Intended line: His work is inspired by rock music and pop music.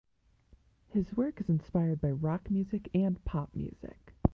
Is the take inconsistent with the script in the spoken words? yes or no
no